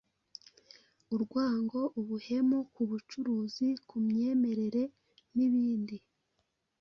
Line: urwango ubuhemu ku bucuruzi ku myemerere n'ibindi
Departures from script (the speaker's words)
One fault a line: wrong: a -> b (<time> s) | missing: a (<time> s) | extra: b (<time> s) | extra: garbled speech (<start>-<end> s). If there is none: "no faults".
no faults